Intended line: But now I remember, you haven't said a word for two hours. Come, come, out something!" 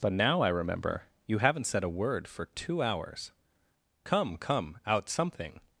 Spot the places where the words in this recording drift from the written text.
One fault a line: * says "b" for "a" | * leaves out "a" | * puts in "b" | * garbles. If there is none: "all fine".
all fine